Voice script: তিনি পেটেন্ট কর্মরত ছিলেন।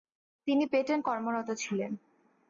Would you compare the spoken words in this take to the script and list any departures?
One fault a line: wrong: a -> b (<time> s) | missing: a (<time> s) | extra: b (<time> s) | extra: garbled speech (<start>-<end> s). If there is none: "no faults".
no faults